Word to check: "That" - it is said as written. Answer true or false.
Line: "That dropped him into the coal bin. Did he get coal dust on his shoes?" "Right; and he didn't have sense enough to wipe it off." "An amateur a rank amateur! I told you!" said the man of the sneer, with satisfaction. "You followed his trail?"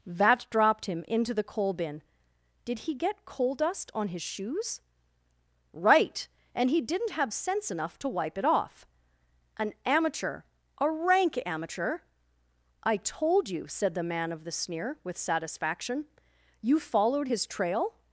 false